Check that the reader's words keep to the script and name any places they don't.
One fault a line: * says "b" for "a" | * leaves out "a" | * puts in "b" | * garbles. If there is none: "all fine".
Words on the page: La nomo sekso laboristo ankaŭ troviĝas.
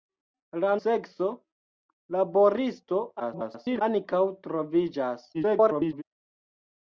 * leaves out "nomo"
* garbles
* garbles